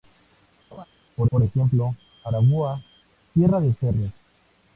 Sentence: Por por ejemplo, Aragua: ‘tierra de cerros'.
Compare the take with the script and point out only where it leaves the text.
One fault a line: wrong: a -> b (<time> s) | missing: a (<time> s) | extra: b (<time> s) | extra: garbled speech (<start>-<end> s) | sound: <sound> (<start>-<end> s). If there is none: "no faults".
sound: laugh (0.7-0.9 s)